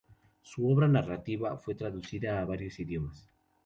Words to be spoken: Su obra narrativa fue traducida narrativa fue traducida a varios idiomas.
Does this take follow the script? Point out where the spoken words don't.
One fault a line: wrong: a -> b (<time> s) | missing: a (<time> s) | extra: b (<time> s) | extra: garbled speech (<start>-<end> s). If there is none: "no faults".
missing: narrativa fue traducida (2.4 s)